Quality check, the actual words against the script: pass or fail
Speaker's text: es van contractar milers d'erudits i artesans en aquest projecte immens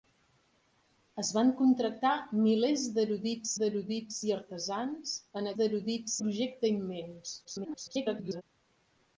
fail